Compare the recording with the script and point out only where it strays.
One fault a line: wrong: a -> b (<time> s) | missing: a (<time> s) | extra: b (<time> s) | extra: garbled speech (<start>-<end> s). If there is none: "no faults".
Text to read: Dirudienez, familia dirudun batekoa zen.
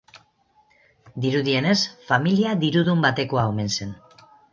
extra: omen (3.5 s)